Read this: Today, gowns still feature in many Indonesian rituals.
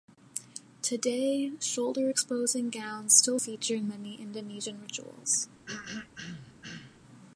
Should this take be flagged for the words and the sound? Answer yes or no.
yes